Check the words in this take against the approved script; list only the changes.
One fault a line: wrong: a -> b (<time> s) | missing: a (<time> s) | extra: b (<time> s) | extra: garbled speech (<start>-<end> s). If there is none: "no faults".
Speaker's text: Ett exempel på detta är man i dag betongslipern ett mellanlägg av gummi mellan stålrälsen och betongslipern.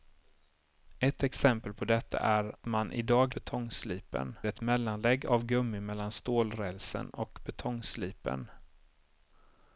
no faults